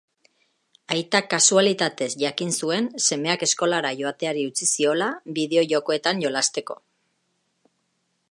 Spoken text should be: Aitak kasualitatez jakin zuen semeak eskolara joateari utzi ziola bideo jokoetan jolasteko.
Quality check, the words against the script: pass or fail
pass